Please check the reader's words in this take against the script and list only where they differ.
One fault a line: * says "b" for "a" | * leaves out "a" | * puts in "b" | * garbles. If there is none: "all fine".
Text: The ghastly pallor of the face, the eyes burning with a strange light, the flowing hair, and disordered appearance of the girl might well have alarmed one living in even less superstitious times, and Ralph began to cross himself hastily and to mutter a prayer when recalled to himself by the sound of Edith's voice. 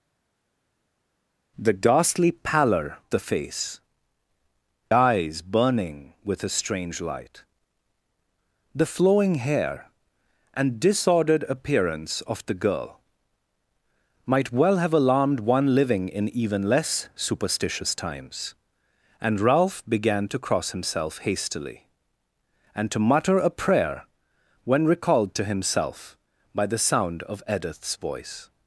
* leaves out "of"
* leaves out "the"